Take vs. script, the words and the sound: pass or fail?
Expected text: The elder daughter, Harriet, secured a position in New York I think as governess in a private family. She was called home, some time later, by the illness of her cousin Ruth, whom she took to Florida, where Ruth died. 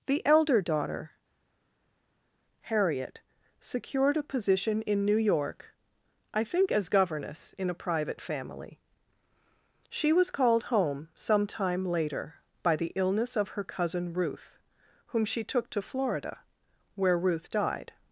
pass